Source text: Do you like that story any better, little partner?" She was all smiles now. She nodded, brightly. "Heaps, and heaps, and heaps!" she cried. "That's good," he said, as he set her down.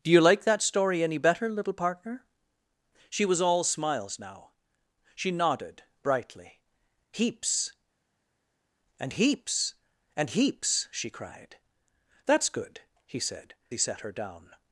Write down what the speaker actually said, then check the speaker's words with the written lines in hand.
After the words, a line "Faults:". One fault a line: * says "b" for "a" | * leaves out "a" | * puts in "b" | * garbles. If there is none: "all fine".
Do you like that story any better, little partner?" She was all smiles now. She nodded, brightly. "Heaps, and heaps, and heaps!" she cried. "That's good," he said, he set her down.
Faults:
* leaves out "as"